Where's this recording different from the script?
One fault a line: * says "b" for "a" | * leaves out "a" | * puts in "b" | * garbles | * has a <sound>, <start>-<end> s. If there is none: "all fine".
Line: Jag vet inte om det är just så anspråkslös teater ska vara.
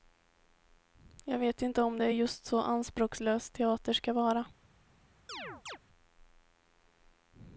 * has a chirp, 5.3-5.8 s